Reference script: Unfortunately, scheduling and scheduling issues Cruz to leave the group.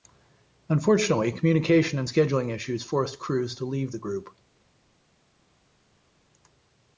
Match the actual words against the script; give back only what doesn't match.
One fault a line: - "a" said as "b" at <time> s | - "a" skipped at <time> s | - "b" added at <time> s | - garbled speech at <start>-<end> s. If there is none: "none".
- "scheduling" said as "communication" at 1.3 s
- "forced" added at 2.8 s